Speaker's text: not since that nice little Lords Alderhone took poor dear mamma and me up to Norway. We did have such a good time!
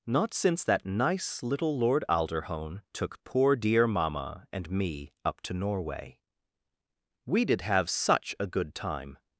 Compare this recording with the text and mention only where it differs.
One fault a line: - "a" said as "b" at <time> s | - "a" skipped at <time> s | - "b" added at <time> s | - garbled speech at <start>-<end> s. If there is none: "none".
- "Lords" said as "Lord" at 1.8 s